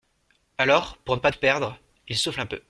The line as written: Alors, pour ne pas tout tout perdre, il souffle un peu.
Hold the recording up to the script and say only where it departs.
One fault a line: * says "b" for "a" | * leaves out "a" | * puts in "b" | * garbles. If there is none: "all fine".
* leaves out "tout"